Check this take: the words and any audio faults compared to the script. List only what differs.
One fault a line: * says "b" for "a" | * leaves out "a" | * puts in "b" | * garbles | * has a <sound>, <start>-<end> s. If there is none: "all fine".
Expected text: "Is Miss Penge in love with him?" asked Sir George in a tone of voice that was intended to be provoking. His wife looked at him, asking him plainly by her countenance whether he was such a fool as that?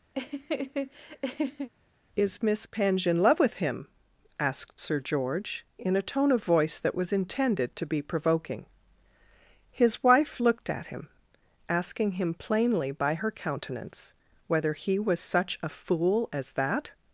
* has a laugh, 0.1-1.7 s